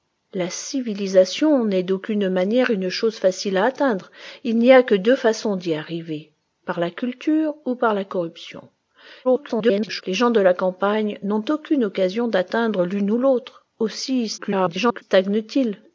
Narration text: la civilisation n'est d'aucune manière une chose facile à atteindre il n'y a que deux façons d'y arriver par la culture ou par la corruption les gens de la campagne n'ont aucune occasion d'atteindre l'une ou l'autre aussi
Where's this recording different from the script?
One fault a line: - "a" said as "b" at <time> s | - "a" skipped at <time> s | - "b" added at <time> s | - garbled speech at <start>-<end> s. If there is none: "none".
- garbled speech at 9.2-10.0 s
- garbled speech at 14.4-15.0 s